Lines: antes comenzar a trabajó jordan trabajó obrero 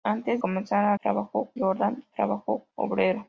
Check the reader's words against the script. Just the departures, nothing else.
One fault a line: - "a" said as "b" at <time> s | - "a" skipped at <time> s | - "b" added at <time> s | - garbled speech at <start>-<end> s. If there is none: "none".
none